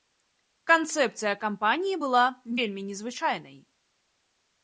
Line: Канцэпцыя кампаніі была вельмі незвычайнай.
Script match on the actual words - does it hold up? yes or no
yes